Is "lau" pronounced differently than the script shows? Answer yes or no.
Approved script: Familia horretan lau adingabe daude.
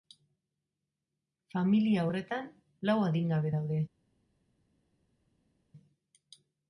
no